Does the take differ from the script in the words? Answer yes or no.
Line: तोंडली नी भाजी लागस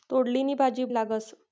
no